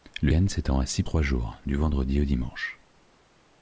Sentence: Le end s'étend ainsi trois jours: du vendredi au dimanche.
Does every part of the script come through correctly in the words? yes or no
yes